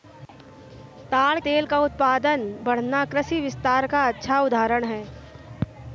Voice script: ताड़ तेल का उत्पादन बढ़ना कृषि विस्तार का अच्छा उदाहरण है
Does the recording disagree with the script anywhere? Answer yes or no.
no